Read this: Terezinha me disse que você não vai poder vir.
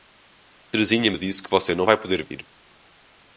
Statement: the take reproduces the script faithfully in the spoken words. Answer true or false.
true